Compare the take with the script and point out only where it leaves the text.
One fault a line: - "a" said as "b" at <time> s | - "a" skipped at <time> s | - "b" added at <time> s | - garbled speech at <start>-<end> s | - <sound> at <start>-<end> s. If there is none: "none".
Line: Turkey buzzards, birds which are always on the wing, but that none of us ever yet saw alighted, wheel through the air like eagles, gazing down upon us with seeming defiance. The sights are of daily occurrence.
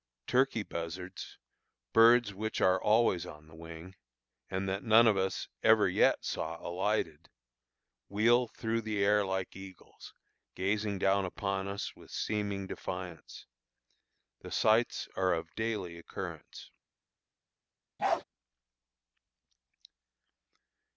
- "but" said as "and" at 4.5 s
- bark at 18.0-18.2 s